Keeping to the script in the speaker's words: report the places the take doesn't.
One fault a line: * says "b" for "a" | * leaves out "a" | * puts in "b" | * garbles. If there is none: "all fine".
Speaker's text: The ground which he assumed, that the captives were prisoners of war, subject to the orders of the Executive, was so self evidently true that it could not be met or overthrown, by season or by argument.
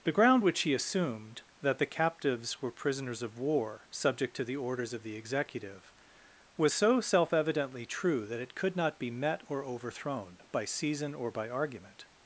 all fine